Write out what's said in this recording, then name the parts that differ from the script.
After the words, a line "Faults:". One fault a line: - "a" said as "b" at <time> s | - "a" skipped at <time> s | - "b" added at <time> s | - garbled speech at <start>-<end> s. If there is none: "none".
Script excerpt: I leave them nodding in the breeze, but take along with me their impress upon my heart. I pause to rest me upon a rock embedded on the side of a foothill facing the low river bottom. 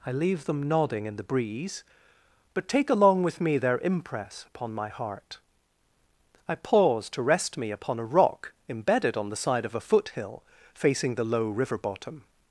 I leave them nodding in the breeze, but take along with me their impress upon my heart. I pause to rest me upon a rock embedded on the side of a foothill facing the low river bottom.
Faults:
none